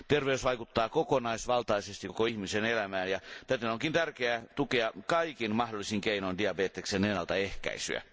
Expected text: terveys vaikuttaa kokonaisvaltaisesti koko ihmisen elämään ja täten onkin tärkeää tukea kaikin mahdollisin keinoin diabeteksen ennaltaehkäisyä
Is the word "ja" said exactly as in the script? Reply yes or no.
yes